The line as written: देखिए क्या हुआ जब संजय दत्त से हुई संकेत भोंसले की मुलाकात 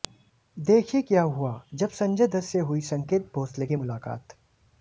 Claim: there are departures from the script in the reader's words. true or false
false